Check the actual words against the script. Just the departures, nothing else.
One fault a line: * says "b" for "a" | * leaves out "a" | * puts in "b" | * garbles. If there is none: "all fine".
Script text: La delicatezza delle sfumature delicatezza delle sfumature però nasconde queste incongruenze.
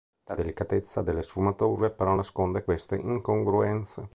* leaves out "delicatezza delle sfumature"